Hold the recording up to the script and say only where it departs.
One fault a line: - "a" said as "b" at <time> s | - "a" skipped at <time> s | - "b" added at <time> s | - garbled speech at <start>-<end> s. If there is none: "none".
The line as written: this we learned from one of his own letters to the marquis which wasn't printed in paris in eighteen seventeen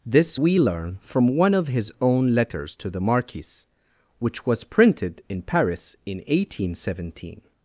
- "learned" said as "learn" at 0.6 s
- "wasn't" said as "was" at 4.5 s